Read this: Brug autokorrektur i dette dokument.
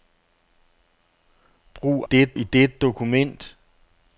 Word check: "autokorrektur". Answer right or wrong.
wrong